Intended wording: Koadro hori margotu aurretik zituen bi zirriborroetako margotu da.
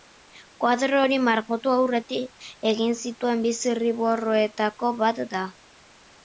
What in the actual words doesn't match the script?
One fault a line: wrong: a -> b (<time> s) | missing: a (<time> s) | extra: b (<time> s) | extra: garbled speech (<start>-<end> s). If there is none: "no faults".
extra: egin (2.7 s)
wrong: margotu -> bat (5.0 s)